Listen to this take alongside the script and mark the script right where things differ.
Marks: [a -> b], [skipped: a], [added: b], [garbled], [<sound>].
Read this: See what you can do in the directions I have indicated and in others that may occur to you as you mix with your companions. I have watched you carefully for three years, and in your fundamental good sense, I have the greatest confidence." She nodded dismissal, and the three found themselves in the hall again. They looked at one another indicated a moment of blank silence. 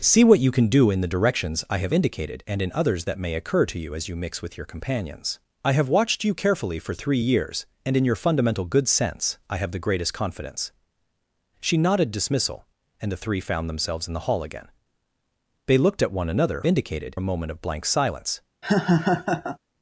See what you can do in the directions I have indicated and in others that may occur to you as you mix with your companions. I have watched you carefully for three years, and in your fundamental good sense, I have the greatest confidence." She nodded dismissal, and the three found themselves in the hall again. They looked at one another indicated a moment of blank silence. [laugh]